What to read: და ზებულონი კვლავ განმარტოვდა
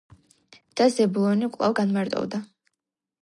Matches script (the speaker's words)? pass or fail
pass